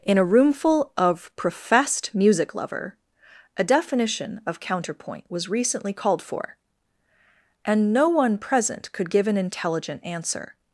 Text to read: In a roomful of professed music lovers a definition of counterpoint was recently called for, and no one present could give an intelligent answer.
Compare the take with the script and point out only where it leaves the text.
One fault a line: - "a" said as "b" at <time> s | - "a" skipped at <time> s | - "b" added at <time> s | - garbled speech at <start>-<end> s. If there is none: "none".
- "lovers" said as "lover" at 2.5 s